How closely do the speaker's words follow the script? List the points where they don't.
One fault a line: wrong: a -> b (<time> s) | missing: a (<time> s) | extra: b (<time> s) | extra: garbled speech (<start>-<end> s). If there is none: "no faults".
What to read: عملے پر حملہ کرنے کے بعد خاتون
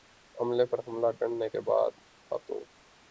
no faults